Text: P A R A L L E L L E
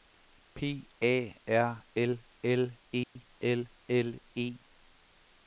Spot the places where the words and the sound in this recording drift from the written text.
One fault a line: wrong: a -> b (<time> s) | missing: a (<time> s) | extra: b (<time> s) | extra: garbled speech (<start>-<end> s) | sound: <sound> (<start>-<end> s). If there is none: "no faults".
missing: A (1.9 s)
sound: dropout (3.0-3.2 s)